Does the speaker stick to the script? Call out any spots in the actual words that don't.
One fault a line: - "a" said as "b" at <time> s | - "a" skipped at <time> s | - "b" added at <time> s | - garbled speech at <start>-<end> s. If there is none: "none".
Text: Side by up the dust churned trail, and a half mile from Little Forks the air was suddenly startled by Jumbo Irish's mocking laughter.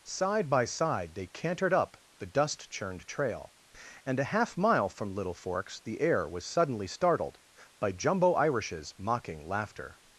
- "side they cantered" added at 0.7 s